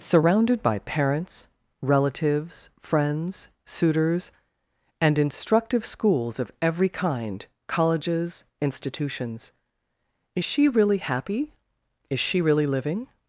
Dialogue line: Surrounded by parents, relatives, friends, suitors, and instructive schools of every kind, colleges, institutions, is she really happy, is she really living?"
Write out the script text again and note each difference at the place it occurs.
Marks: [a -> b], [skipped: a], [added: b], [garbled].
Surrounded by parents, relatives, friends, suitors, and instructive schools of every kind, colleges, institutions, is she really happy, is she really living?"